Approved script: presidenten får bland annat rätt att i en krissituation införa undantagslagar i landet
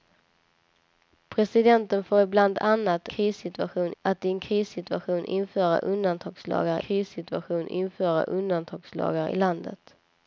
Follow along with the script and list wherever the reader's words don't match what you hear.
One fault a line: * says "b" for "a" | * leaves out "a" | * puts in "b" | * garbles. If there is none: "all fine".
* says "krissituation" for "rätt"
* puts in "krissituation införa undantagslagar"